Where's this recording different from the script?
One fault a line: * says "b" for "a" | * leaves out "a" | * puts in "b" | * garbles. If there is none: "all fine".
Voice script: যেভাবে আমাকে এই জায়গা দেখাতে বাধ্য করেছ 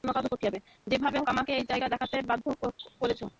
all fine